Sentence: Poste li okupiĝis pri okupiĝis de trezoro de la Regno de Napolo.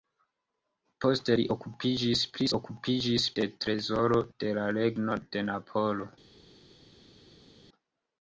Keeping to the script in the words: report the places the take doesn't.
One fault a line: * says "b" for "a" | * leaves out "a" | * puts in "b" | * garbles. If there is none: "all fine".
all fine